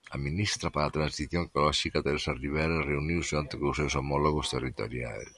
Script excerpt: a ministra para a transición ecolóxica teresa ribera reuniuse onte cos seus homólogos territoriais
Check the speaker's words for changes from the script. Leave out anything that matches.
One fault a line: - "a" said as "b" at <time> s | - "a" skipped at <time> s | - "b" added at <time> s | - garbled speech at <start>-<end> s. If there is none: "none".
none